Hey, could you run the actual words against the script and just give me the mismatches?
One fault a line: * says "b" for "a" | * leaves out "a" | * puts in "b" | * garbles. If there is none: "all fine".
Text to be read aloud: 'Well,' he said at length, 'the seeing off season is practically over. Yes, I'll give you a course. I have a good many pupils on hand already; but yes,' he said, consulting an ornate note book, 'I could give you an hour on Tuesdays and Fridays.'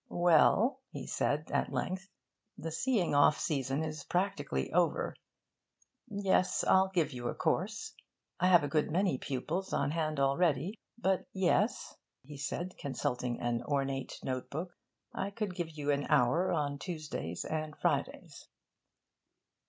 all fine